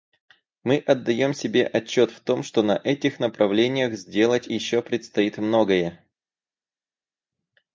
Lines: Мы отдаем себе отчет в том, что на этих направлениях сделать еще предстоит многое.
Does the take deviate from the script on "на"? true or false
false